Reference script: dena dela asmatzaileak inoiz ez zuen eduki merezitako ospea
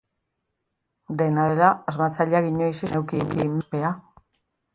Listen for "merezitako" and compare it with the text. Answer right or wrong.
wrong